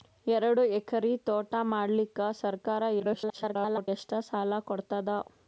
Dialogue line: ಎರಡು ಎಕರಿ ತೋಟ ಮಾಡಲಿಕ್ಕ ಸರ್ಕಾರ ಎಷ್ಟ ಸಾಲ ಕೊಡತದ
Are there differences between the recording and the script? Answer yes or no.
yes